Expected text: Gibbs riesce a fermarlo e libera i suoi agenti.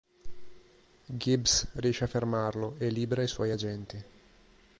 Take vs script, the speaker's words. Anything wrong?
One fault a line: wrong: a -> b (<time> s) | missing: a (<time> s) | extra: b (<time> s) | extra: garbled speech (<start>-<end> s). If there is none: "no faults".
no faults